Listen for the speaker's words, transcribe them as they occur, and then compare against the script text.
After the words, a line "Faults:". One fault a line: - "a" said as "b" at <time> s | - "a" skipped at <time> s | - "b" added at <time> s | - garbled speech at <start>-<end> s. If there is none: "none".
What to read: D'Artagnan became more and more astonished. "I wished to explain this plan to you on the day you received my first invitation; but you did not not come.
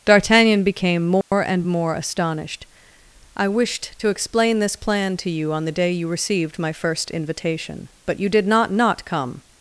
D'Artagnan became more and more astonished. "I wished to explain this plan to you on the day you received my first invitation; but you did not not come.
Faults:
none